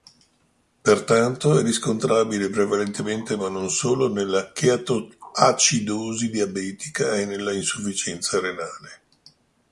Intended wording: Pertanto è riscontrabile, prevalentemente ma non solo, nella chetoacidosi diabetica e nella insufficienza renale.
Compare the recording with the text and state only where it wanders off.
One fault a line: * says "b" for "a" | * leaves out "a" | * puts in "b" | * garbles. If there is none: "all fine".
all fine